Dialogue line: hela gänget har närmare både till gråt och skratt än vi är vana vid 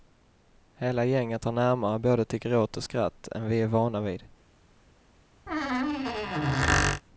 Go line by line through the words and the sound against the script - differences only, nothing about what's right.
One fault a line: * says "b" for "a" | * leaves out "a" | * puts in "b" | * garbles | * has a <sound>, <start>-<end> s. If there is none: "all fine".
* has a squeak, 5.5-7.0 s